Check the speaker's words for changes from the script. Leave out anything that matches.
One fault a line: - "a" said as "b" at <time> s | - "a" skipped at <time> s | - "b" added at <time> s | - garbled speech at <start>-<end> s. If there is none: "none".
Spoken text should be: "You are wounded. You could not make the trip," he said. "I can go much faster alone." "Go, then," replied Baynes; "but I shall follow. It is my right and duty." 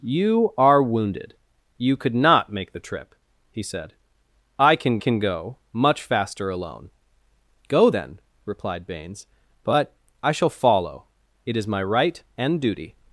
- "can" added at 5.0 s